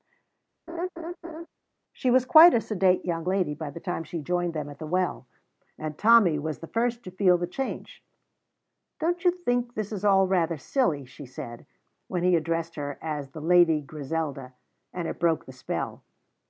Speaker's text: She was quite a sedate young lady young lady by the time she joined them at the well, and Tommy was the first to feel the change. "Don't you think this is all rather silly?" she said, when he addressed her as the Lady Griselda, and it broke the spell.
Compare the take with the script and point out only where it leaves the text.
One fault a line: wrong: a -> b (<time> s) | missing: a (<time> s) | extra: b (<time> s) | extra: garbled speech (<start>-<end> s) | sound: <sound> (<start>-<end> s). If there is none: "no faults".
sound: laugh (0.7-1.5 s)
missing: young lady (3.5 s)